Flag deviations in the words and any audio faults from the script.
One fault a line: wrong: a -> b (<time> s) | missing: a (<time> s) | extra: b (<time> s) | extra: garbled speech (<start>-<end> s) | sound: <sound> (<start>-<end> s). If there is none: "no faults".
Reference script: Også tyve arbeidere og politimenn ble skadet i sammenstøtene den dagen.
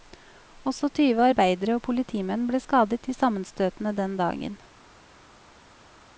no faults